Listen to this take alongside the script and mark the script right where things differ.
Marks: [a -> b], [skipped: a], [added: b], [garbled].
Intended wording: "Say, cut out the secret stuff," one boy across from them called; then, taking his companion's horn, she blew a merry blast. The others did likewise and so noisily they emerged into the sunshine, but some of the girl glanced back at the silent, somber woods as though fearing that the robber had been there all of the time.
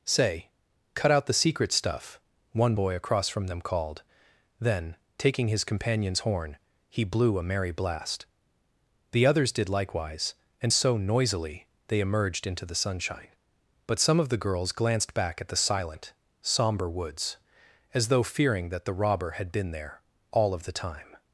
"Say, cut out the secret stuff," one boy across from them called; then, taking his companion's horn, [she -> he] blew a merry blast. The others did likewise and so noisily they emerged into the sunshine, but some of the [girl -> girls] glanced back at the silent, somber woods as though fearing that the robber had been there all of the time.